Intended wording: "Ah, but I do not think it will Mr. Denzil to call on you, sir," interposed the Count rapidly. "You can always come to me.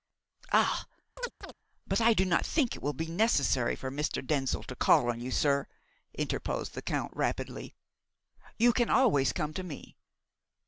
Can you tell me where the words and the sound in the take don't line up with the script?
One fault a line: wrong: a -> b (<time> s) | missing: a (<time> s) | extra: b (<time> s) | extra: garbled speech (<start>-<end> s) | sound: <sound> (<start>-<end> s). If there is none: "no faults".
sound: chirp (1.2-1.5 s)
extra: be necessary for (2.9 s)